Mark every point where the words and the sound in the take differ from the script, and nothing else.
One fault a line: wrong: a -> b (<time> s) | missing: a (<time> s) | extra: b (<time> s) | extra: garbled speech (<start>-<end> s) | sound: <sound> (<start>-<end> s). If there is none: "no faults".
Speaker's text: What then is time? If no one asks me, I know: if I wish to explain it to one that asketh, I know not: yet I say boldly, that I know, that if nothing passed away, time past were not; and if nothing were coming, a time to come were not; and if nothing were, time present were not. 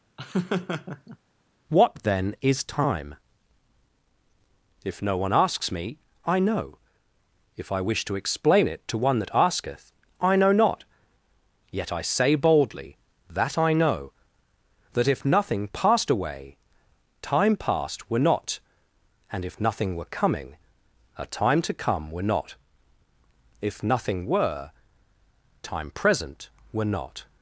sound: laugh (0.2-1.2 s)
missing: and (22.5 s)